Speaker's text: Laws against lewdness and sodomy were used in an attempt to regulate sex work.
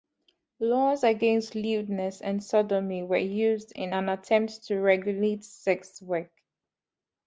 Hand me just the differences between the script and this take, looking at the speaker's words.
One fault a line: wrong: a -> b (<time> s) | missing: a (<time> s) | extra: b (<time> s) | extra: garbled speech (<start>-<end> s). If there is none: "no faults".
no faults